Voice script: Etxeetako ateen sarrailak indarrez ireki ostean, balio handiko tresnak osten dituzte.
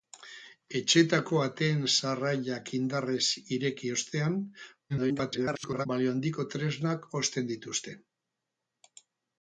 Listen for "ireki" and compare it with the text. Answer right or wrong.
right